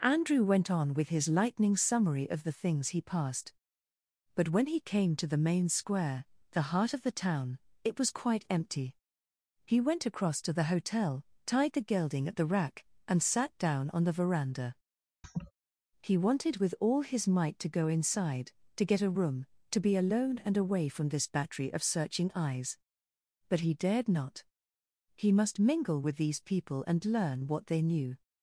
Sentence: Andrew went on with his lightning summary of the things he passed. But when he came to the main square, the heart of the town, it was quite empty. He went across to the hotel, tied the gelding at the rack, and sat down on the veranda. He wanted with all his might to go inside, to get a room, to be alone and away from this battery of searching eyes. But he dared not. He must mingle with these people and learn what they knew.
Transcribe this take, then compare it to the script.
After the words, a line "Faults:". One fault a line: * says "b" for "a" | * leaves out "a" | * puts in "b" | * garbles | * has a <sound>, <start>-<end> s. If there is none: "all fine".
Andrew went on with his lightning summary of the things he passed. But when he came to the main square, the heart of the town, it was quite empty. He went across to the hotel, tied the gelding at the rack, and sat down on the veranda. He wanted with all his might to go inside, to get a room, to be alone and away from this battery of searching eyes. But he dared not. He must mingle with these people and learn what they knew.
Faults:
* has a laugh, 15.2-15.5 s